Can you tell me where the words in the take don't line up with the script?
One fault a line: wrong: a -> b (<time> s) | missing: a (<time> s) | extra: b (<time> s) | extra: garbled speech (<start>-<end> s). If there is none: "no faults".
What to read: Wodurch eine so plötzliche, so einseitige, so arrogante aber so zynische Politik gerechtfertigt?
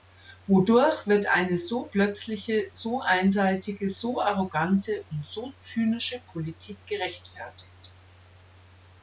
extra: wird (1.1 s)
wrong: aber -> und (5.1 s)